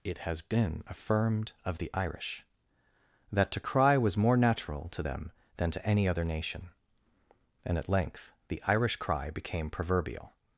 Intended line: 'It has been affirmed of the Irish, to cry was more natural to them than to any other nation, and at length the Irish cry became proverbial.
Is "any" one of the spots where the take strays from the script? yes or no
no